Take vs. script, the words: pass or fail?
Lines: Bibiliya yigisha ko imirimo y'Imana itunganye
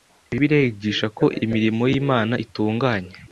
pass